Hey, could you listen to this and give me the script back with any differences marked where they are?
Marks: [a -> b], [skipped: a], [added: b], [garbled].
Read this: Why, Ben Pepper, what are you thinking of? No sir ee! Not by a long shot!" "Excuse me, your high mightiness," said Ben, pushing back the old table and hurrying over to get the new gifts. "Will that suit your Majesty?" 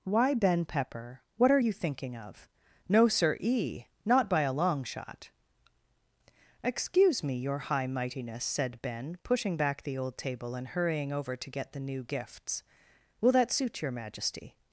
Why, Ben Pepper, what are you thinking of? No sir ee! Not by a long shot!" "Excuse me, your high mightiness," said Ben, pushing back the old table and hurrying over to get the new gifts. "Will that suit your Majesty?"